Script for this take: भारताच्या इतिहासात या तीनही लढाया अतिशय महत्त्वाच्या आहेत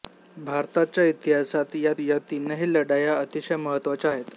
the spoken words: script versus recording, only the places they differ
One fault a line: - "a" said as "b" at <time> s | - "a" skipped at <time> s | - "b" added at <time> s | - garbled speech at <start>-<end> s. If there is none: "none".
- "या" added at 2.0 s